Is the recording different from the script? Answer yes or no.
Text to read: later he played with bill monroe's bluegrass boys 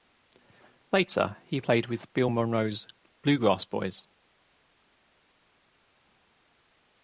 no